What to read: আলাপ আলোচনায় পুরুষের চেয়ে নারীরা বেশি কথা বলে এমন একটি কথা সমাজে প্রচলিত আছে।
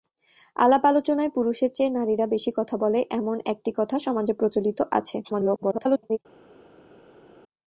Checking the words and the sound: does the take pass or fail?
fail